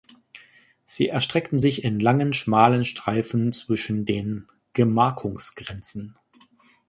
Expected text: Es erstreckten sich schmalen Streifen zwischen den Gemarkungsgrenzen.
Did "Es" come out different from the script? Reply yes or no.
yes